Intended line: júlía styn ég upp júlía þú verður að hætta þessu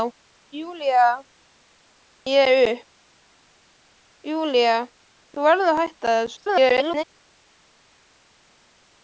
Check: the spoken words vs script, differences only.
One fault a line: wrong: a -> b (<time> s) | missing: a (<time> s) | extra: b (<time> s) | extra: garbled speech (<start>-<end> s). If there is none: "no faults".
missing: styn (1.1 s)
extra: garbled speech (6.4-7.0 s)